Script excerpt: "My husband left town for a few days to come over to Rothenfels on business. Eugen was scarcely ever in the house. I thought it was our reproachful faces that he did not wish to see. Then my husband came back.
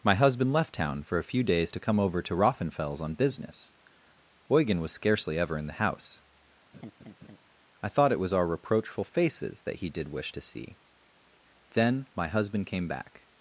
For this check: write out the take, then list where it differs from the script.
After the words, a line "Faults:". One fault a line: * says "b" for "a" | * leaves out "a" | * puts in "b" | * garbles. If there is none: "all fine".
"My husband left town for a few days to come over to Rothenfels on business. Eugen was scarcely ever in the house. I thought it was our reproachful faces that he did wish to see. Then my husband came back.
Faults:
* leaves out "not"